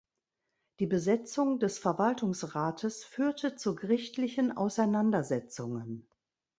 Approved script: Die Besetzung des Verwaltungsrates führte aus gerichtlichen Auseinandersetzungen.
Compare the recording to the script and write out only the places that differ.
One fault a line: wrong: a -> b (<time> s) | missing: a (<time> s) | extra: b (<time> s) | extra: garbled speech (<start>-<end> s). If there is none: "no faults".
wrong: aus -> zu (3.5 s)